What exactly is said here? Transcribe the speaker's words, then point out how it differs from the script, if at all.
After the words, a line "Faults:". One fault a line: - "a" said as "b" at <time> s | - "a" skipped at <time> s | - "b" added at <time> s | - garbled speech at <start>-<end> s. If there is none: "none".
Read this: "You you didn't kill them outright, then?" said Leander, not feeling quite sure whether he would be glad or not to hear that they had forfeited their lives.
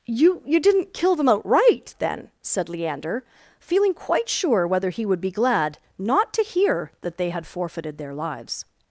"You you didn't kill them outright, then?" said Leander, feeling quite sure whether he would be glad not to hear that they had forfeited their lives.
Faults:
- "not" skipped at 3.2 s
- "or" skipped at 5.8 s